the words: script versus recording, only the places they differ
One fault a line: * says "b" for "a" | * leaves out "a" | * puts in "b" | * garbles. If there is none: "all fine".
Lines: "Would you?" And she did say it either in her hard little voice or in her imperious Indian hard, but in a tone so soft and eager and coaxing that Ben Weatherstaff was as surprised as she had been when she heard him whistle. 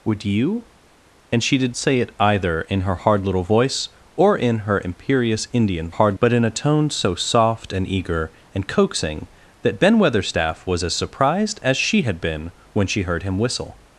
all fine